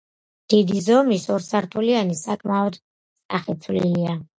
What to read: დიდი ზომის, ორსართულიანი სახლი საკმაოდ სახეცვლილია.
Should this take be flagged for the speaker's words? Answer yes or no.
yes